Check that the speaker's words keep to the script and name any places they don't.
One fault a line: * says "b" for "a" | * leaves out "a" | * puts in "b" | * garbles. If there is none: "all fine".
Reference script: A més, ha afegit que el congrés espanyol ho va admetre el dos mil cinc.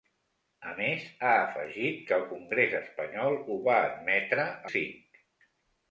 * leaves out "el dos mil"